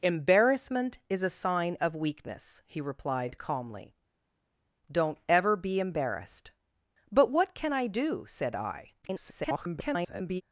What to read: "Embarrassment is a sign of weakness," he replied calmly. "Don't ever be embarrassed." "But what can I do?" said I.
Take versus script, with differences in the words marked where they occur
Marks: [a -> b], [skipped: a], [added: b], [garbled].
"Embarrassment is a sign of weakness," he replied calmly. "Don't ever be embarrassed." "But what can I do?" said I. [garbled]